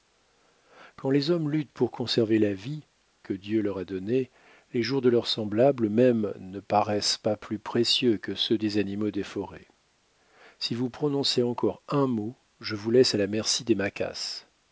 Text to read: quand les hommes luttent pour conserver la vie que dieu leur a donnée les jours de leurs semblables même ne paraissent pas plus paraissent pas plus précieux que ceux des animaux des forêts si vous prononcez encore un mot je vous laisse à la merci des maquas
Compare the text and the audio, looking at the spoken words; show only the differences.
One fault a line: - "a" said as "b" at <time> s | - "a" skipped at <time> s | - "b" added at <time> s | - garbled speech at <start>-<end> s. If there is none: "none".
- "paraissent pas plus" skipped at 7.6 s